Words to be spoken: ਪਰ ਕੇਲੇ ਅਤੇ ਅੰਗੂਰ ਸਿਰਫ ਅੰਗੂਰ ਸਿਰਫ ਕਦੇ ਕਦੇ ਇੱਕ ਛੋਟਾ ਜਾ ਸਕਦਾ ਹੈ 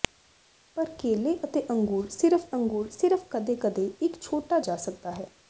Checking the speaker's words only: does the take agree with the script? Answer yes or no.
yes